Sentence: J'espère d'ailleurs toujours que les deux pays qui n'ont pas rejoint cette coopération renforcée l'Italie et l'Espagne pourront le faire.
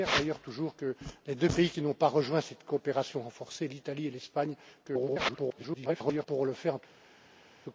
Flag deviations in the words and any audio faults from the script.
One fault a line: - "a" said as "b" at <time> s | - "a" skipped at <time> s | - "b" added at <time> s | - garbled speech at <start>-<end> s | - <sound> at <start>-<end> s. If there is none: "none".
- garbled speech at 4.8-6.3 s